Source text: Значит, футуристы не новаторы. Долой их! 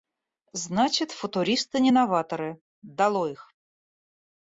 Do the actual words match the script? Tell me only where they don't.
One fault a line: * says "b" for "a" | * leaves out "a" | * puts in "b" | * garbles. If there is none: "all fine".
all fine